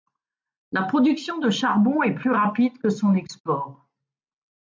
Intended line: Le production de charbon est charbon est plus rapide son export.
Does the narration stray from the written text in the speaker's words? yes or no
yes